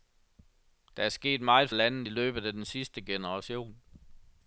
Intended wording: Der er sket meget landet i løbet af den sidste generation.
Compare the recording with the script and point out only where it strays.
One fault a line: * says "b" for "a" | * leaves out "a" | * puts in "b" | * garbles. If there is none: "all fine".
all fine